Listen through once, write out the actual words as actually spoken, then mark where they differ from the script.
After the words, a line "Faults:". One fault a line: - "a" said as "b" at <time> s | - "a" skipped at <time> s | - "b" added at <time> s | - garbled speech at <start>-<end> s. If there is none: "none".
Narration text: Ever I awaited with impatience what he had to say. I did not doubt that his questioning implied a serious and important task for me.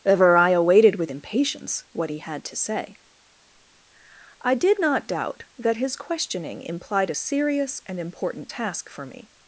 Ever I awaited with impatience what he had to say. I did not doubt that his questioning implied a serious and important task for me.
Faults:
none